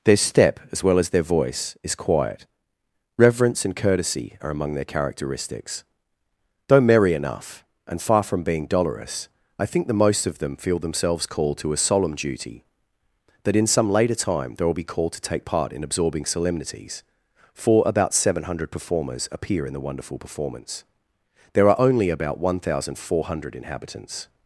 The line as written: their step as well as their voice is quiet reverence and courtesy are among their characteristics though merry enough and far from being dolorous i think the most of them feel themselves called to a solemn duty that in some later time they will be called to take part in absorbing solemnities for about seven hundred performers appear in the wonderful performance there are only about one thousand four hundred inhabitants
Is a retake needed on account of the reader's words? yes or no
no